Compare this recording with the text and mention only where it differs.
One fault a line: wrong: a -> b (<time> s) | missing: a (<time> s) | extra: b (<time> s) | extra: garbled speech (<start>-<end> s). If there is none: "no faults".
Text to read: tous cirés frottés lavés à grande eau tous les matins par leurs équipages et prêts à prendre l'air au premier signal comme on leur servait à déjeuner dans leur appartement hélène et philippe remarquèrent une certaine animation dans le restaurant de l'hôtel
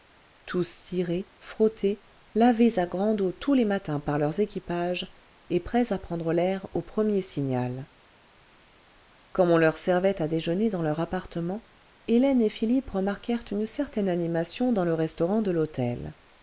no faults